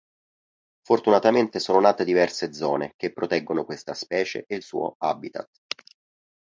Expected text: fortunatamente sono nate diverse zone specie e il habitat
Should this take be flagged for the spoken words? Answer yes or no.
yes